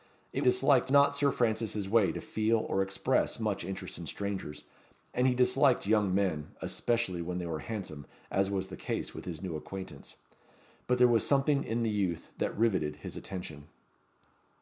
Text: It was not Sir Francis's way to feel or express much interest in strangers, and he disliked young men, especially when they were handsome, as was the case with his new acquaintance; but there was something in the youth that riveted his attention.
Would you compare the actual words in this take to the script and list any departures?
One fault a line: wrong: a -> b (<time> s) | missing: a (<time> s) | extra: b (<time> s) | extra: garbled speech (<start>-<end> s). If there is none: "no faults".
wrong: was -> disliked (0.4 s)